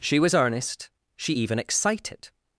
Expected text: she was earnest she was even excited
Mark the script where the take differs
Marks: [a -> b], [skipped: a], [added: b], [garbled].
she was earnest she [skipped: was] even excited